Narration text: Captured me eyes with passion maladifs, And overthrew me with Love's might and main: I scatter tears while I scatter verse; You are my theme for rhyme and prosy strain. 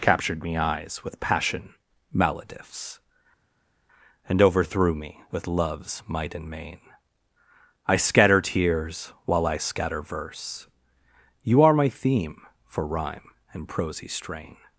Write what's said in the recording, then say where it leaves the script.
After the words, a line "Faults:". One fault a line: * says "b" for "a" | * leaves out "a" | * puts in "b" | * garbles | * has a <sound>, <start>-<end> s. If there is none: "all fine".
Captured me eyes with passion maladifs, And overthrew me with Love's might and main: I scatter tears while I scatter verse; You are my theme for rhyme and prosy strain.
Faults:
all fine